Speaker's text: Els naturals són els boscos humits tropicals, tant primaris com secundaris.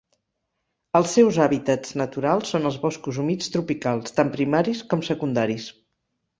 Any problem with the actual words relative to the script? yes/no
yes